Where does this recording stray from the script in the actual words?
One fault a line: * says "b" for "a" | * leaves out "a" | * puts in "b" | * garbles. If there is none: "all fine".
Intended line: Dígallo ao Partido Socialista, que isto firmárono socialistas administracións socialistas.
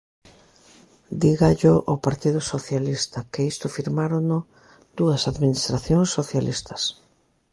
* says "dúas" for "socialistas"